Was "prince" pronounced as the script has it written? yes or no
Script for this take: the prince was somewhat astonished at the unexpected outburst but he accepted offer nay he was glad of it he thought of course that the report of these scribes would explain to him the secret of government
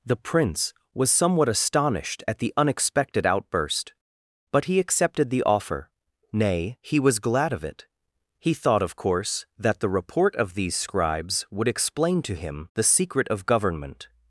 yes